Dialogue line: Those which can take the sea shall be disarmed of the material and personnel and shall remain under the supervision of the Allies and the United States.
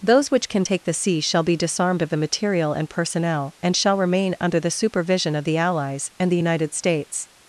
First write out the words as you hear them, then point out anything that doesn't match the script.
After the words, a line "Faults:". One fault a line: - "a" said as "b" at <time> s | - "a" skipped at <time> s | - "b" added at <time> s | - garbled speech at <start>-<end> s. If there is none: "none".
Those which can take the sea shall be disarmed of the material and personnel and shall remain under the supervision of the Allies and the United States.
Faults:
none